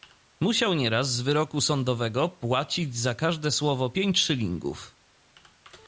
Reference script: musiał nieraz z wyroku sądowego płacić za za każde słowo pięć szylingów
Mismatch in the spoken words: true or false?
true